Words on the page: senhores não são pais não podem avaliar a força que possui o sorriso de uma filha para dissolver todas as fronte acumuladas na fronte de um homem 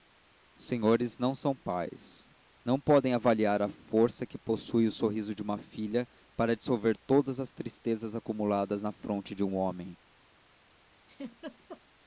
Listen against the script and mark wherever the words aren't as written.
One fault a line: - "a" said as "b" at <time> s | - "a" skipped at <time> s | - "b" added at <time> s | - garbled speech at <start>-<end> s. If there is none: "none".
- "fronte" said as "tristezas" at 7.5 s